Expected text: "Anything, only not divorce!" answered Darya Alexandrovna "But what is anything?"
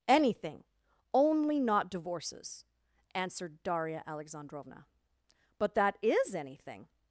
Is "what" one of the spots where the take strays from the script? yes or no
yes